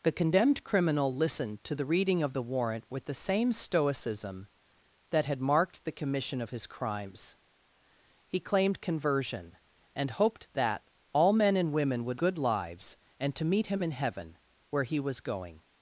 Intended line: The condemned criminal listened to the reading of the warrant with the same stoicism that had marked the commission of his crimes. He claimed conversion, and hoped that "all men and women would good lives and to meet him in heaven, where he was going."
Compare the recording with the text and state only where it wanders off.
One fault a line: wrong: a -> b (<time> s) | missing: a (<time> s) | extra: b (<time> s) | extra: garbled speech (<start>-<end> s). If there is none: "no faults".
no faults